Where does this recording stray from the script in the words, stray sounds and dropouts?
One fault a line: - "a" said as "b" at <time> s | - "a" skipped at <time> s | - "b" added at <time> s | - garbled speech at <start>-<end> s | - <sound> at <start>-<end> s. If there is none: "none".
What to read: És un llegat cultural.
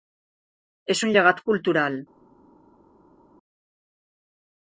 none